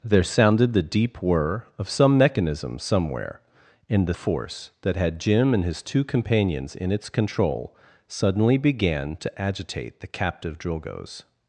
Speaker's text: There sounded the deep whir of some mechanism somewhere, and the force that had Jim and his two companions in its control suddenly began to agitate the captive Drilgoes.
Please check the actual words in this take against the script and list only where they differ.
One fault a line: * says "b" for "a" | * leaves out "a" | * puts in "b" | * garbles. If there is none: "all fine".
all fine